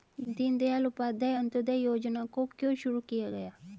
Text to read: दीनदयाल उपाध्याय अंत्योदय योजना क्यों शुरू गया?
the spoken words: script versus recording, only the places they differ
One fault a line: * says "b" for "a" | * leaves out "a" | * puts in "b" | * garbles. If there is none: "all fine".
* puts in "को"
* puts in "किया"